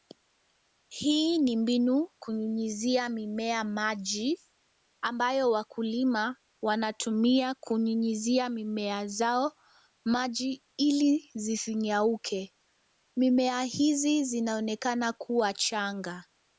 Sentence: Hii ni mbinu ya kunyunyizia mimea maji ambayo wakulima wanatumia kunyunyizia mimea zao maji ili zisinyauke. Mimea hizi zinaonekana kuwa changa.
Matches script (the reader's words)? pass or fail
fail